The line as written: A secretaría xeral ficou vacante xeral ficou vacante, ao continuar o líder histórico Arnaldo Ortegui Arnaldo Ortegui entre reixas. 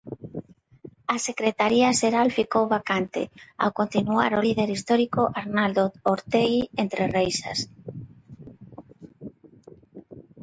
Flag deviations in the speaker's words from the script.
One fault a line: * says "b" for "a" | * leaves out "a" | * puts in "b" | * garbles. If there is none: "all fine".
* leaves out "xeral ficou vacante"
* leaves out "Arnaldo Ortegui"